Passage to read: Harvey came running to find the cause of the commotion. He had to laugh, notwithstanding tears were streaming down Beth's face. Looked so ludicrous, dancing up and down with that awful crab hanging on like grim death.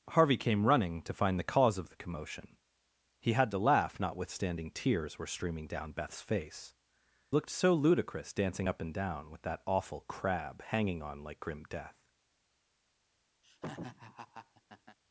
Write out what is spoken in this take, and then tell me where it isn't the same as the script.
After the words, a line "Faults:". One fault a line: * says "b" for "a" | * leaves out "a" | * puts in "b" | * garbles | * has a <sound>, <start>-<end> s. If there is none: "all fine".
Harvey came running to find the cause of the commotion. He had to laugh, notwithstanding tears were streaming down Beth's face. Looked so ludicrous, dancing up and down with that awful crab hanging on like grim death.
Faults:
* has a laugh, 13.4-15.0 s